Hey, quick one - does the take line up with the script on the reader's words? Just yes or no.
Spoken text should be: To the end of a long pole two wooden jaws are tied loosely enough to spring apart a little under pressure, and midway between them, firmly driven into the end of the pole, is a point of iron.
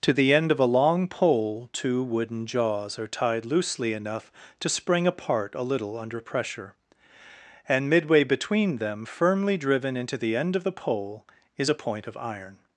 yes